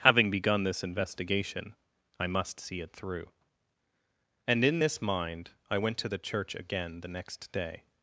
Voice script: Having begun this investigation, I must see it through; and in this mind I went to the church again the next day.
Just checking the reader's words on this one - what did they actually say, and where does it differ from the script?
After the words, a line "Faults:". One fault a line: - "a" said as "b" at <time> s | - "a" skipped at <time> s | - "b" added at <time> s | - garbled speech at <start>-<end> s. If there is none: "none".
Having begun this investigation, I must see it through; and in this mind I went to the church again the next day.
Faults:
none